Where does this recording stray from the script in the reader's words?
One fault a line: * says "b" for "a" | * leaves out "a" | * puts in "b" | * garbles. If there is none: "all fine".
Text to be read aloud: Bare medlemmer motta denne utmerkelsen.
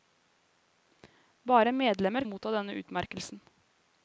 all fine